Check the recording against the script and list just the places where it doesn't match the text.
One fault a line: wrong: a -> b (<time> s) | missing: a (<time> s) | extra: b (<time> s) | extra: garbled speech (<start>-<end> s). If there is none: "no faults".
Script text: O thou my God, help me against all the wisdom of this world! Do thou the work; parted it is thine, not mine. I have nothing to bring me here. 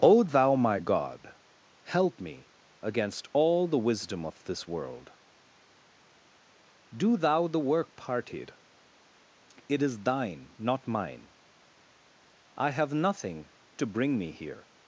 no faults